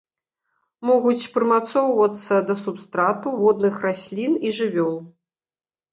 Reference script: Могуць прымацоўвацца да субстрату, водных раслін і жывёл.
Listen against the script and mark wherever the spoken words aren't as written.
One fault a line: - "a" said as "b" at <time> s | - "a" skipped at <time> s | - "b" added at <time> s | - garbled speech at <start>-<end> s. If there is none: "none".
none